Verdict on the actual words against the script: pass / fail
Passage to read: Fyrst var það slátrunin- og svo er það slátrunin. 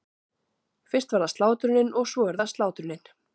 pass